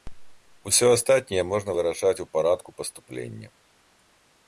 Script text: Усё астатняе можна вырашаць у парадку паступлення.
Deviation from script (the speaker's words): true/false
false